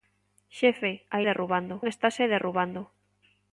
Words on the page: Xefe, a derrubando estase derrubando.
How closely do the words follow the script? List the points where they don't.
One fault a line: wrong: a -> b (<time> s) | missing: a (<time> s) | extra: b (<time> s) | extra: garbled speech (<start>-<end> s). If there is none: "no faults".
no faults